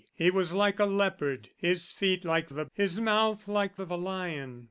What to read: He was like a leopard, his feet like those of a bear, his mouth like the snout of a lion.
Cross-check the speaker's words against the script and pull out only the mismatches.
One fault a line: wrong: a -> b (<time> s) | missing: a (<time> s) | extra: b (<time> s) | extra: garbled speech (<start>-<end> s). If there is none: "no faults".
missing: those (2.5 s)
missing: bear (2.7 s)
missing: the snout (3.8 s)